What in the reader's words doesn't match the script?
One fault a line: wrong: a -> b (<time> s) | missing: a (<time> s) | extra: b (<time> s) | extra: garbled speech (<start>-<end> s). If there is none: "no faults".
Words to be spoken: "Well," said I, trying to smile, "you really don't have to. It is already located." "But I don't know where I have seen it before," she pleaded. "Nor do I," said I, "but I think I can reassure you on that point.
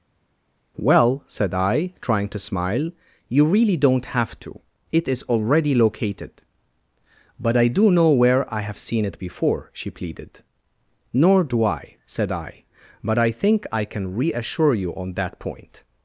wrong: don't -> do (7.7 s)